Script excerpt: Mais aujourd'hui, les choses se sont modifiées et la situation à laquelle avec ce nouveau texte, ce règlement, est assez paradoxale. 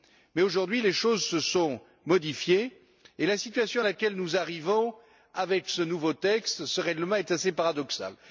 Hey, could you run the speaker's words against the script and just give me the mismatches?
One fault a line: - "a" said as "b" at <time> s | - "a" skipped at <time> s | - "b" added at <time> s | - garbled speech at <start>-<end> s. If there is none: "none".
- "nous arrivons" added at 4.2 s